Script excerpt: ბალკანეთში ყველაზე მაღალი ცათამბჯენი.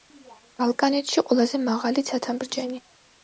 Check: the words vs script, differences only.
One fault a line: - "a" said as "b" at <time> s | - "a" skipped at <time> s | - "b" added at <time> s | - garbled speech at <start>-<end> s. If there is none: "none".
none